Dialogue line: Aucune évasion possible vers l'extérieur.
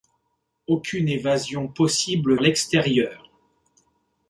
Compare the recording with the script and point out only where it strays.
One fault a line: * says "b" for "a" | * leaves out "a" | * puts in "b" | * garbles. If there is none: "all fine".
* leaves out "vers"